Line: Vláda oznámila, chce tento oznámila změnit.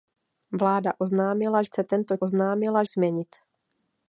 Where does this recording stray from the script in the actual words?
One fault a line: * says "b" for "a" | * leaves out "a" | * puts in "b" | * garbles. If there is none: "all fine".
all fine